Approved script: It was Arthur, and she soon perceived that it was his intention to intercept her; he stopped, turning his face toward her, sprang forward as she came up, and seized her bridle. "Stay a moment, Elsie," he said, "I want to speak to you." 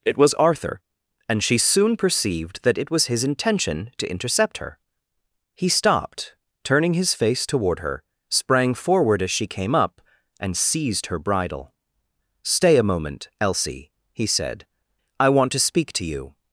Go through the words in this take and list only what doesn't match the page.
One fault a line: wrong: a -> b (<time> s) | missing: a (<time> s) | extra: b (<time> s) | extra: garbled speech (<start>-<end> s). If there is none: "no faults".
no faults